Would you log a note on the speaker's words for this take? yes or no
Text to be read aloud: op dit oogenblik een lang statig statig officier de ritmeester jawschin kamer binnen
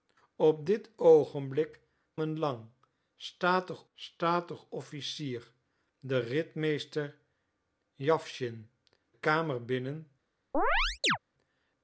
no